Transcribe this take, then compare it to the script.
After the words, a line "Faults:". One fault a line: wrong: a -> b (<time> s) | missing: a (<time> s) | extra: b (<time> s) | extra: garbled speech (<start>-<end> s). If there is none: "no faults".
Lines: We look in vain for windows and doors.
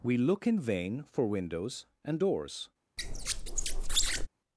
We look in vain for windows and doors.
Faults:
no faults